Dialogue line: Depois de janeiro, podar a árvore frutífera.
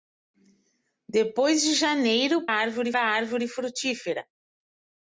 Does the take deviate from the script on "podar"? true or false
true